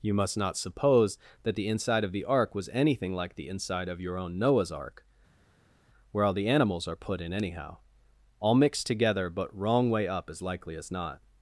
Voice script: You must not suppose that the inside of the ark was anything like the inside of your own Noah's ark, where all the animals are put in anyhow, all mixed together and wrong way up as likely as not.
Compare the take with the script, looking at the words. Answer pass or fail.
fail